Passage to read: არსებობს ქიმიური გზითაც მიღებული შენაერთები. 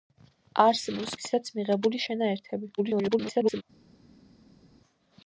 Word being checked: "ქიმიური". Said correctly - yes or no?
no